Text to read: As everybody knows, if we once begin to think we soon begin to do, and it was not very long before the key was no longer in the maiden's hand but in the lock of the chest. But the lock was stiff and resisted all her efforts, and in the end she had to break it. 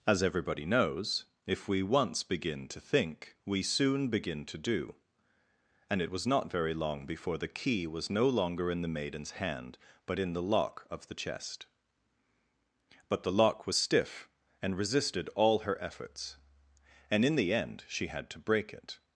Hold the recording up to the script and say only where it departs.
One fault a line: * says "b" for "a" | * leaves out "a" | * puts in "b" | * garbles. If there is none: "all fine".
all fine